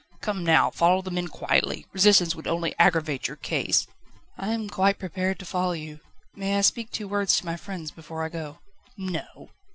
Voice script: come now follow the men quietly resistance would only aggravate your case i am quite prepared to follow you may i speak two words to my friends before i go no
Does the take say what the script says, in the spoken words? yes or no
yes